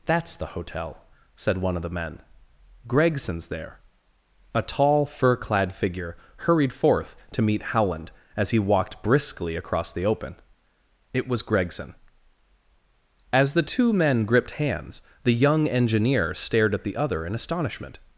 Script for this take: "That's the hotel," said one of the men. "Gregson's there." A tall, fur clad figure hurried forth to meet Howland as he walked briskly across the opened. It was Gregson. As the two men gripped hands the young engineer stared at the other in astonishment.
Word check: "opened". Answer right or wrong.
wrong